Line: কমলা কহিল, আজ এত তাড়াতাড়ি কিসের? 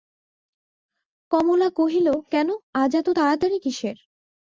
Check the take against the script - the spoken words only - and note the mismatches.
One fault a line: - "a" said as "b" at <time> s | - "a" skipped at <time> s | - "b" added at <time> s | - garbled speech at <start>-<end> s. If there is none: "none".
- "কেন" added at 2.3 s